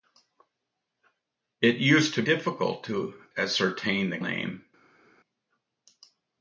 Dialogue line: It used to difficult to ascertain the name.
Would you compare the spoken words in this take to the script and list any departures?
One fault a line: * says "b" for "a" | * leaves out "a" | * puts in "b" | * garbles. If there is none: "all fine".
all fine